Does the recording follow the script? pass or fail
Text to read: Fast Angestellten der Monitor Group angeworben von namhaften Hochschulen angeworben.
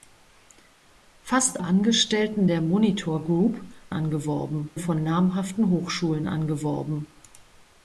pass